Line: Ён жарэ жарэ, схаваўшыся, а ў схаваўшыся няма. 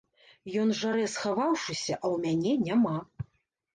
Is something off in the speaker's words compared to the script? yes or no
yes